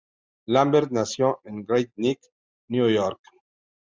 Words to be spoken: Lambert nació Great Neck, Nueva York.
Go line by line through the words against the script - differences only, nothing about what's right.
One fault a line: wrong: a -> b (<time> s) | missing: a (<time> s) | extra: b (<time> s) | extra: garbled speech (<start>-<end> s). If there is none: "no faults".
extra: en (1.4 s)